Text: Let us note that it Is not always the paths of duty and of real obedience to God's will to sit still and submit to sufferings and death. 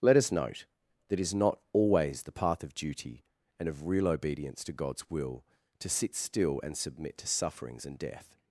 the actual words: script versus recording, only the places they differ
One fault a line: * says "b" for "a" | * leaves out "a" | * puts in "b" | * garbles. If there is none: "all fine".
* says "path" for "paths"